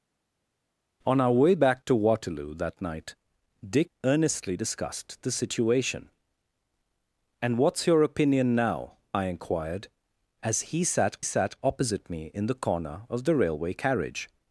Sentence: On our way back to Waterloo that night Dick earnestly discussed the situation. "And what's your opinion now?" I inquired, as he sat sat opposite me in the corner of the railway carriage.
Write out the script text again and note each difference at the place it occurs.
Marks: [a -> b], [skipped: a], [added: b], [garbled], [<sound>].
On our way back to Waterloo that night Dick earnestly discussed the situation. "And what's your opinion now?" I inquired, as he sat sat opposite me in the corner of the railway carriage.